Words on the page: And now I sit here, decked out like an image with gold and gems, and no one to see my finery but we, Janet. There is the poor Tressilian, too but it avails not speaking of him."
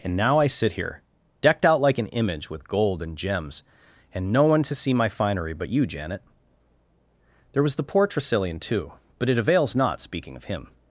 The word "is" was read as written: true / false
false